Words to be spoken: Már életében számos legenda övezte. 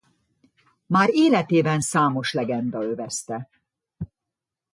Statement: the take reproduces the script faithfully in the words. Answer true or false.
true